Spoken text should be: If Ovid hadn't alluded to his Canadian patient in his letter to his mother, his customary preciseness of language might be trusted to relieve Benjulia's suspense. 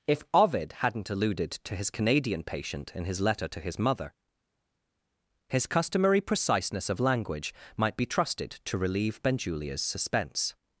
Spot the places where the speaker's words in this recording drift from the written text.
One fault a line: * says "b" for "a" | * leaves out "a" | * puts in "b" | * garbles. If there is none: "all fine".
all fine